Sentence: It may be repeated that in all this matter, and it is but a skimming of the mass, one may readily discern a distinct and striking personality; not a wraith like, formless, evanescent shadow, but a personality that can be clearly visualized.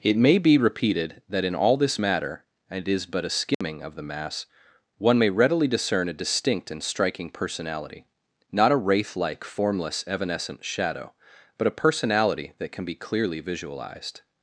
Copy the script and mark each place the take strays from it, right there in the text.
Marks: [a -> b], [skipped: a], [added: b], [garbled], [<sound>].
It may be repeated that in all this matter, and it is but a skimming [dropout] of the mass, one may readily discern a distinct and striking personality; not a wraith like, formless, evanescent shadow, but a personality that can be clearly visualized.